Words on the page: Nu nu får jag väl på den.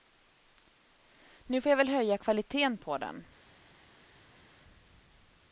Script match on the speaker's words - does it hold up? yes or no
no